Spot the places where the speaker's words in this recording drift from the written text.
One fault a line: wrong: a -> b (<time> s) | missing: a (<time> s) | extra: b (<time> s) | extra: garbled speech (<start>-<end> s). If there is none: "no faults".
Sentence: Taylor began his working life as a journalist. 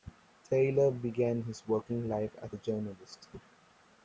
no faults